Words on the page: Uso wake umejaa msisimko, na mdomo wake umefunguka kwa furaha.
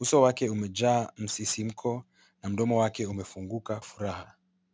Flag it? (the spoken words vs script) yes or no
yes